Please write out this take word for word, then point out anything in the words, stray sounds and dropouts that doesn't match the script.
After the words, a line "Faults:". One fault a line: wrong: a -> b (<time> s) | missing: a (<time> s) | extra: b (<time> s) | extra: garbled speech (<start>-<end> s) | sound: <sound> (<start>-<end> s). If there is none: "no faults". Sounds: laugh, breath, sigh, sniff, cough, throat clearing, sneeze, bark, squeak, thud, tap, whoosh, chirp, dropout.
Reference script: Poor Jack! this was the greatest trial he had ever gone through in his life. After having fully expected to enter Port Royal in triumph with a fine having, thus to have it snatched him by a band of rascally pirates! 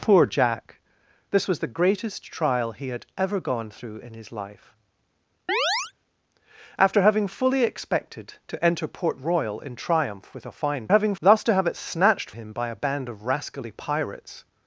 Poor Jack! this was the greatest trial he had ever gone through in his life. After having fully expected to enter Port Royal in triumph with a fine having, thus to have it snatched him by a band of rascally pirates!
Faults:
sound: chirp (5.5-5.9 s)